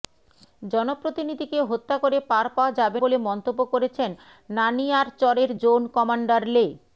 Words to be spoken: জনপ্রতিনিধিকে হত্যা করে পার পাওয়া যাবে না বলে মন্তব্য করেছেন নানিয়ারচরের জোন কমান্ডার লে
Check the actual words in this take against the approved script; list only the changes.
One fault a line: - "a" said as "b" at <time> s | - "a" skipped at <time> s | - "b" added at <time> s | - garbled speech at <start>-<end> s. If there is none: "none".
- "না" skipped at 3.0 s